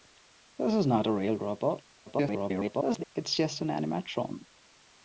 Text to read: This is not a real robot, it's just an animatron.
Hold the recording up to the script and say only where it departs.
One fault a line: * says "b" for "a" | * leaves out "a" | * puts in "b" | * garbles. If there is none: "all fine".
* garbles